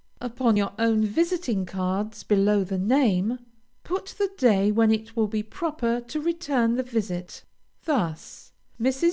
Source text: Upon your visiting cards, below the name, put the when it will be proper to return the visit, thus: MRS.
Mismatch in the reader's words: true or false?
true